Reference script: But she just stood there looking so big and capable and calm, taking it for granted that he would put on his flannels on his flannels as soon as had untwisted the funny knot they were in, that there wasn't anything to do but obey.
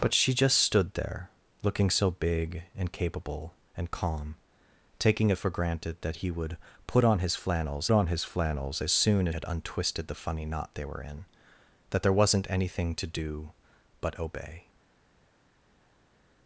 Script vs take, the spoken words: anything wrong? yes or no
no